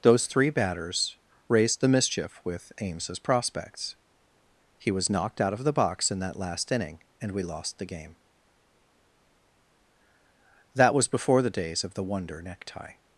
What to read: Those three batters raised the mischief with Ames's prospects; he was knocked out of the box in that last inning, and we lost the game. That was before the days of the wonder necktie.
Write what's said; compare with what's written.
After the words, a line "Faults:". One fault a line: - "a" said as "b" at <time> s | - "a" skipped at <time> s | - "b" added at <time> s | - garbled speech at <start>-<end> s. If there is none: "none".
Those three batters raised the mischief with Ames's prospects; he was knocked out of the box in that last inning, and we lost the game. That was before the days of the wonder necktie.
Faults:
none